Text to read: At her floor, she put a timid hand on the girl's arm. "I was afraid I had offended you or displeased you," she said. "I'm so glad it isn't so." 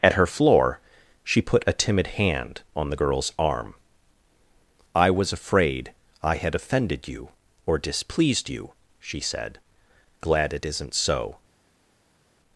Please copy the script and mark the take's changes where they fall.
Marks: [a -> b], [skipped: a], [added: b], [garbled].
At her floor, she put a timid hand on the girl's arm. "I was afraid I had offended you or displeased you," she said. [skipped: "I'm so] glad it isn't so."